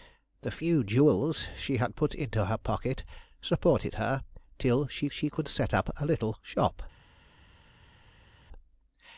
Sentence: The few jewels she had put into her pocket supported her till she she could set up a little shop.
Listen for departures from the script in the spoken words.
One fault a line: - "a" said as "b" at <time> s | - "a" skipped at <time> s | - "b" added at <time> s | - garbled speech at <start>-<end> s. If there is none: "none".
none